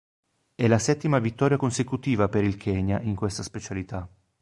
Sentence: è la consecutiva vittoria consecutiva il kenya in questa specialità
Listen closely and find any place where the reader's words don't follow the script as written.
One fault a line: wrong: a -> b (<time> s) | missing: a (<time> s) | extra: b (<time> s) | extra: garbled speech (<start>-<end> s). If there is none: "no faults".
wrong: consecutiva -> settima (0.8 s)
extra: per (2.3 s)